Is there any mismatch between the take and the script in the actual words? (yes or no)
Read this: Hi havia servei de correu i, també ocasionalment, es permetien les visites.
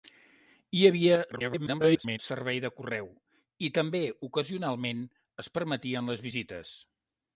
yes